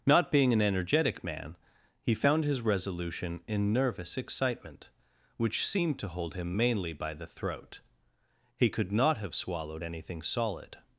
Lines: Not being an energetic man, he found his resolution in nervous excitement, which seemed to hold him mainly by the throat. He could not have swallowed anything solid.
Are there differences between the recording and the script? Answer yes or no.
no